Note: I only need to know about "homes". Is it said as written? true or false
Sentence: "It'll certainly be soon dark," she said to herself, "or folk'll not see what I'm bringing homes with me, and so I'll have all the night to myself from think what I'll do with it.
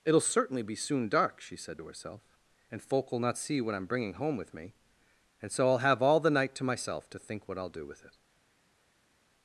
false